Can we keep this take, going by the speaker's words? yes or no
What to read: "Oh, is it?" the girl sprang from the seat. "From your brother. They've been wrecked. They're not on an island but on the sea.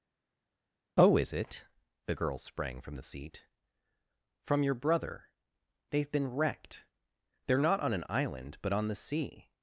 yes